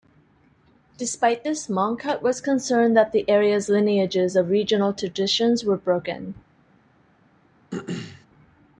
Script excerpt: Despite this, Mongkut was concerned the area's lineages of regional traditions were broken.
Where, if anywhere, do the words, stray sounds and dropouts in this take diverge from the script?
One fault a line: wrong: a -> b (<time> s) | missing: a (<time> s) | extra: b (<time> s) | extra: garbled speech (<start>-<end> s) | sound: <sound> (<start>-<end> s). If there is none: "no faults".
extra: that (2.9 s)
sound: throat clearing (7.7-8.3 s)